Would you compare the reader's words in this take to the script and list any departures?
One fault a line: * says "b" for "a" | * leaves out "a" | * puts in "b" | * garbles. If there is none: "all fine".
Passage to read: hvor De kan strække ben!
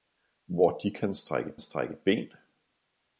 * puts in "strække"